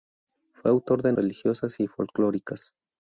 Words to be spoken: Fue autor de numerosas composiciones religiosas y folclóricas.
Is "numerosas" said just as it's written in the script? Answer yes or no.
no